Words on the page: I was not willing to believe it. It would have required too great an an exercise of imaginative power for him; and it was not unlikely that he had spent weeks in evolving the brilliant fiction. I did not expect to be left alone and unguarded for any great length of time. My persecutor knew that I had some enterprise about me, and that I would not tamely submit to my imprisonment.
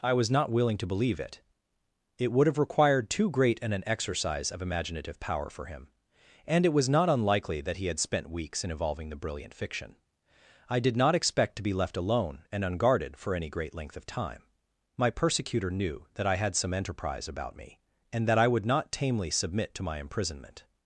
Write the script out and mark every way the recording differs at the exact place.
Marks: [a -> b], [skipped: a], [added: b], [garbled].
I was not willing to believe it. It would have required too great an an exercise of imaginative power for him; and it was not unlikely that he had spent weeks in evolving the brilliant fiction. I did not expect to be left alone and unguarded for any great length of time. My persecutor knew that I had some enterprise about me, and that I would not tamely submit to my imprisonment.